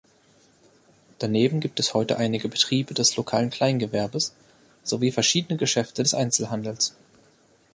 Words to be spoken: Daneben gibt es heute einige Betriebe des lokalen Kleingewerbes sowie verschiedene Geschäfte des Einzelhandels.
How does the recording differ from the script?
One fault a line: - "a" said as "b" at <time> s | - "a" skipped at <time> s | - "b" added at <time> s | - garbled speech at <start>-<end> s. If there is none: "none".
none